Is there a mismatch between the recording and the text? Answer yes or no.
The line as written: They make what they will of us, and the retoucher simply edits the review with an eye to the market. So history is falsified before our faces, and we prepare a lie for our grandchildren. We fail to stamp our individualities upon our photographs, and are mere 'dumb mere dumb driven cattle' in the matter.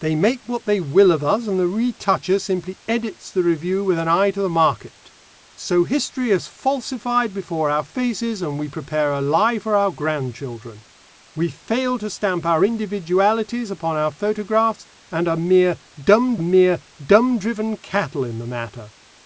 no